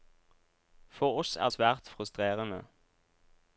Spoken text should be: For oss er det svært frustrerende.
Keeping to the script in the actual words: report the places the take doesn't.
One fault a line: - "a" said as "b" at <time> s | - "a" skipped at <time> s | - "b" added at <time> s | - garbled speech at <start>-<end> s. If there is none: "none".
- "det" skipped at 1.5 s